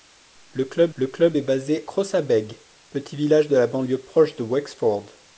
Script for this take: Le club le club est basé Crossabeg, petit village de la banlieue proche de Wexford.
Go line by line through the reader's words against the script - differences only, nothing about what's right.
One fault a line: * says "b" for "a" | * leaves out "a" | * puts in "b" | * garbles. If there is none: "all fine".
all fine